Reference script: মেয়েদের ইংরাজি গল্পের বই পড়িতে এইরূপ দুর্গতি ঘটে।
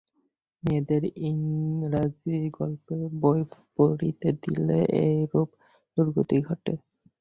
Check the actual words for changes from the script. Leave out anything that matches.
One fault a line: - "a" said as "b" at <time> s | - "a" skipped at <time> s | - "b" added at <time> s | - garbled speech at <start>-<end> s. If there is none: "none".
- "দিলে" added at 4.4 s